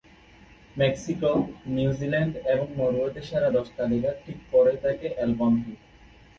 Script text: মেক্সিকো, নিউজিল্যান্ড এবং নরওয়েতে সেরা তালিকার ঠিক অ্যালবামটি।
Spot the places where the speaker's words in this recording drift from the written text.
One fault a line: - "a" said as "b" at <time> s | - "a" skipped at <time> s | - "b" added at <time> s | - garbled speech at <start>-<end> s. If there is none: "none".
- "দশ" added at 3.5 s
- "পরেই থাকে" added at 4.5 s